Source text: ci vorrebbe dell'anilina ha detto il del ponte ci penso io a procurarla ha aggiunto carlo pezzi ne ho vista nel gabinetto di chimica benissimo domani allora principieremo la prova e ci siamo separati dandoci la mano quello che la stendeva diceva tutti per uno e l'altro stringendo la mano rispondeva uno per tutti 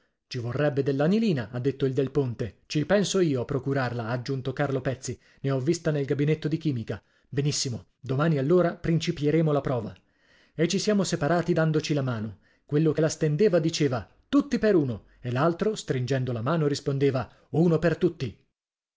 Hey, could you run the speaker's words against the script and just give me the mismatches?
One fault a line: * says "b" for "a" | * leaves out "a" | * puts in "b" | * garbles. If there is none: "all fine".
all fine